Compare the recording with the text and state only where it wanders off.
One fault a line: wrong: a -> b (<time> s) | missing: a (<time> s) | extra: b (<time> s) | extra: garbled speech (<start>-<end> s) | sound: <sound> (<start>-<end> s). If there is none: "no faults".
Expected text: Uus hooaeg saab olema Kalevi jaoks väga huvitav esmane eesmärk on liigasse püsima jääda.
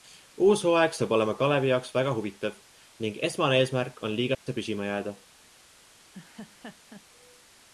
extra: ning (3.1 s)
sound: dropout (4.3-4.5 s)
sound: laugh (6.1-7.1 s)